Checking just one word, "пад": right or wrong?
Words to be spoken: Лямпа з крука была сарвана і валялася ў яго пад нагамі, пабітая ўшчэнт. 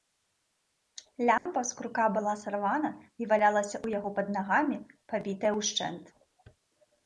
right